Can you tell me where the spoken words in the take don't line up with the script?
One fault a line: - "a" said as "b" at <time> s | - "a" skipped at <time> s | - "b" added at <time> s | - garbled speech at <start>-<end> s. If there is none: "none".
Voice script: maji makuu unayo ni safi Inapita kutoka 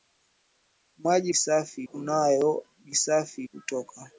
- "makuu" said as "safi" at 1.3 s
- "Inapita" skipped at 3.4 s